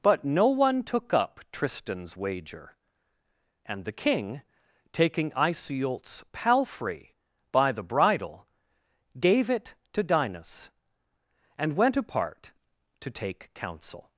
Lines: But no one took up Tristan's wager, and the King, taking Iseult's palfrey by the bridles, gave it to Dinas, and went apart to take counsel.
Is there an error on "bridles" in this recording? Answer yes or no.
yes